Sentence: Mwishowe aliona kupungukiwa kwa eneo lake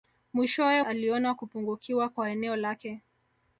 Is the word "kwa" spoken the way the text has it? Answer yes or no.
yes